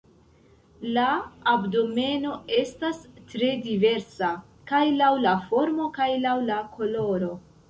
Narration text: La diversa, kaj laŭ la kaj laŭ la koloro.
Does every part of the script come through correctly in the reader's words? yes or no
no